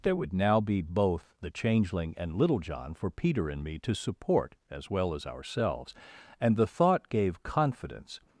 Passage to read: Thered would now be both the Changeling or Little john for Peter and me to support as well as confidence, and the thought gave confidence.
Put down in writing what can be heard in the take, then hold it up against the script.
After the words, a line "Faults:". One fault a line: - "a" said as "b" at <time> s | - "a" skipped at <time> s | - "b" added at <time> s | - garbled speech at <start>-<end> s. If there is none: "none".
There would now be both the Changeling and Little john for Peter and me to support as well as ourselves, and the thought gave confidence.
Faults:
- "Thered" said as "There" at 0.0 s
- "or" said as "and" at 2.2 s
- "confidence" said as "ourselves" at 5.3 s